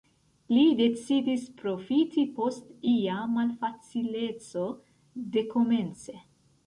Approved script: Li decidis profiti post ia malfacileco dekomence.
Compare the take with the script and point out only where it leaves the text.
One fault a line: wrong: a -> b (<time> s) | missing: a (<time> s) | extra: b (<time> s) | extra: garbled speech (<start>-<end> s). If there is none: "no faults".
no faults